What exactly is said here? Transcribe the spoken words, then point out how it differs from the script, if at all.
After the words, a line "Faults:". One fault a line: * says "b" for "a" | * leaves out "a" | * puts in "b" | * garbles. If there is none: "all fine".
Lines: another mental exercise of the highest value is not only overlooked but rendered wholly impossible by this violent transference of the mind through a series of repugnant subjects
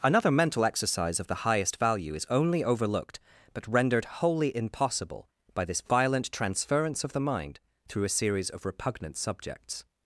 another mental exercise of the highest value is only overlooked but rendered wholly impossible by this violent transference of the mind through a series of repugnant subjects
Faults:
* leaves out "not"